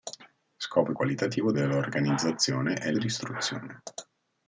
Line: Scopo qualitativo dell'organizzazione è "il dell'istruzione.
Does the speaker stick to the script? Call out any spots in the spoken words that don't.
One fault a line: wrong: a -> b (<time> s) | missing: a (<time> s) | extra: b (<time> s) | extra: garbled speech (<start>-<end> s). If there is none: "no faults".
no faults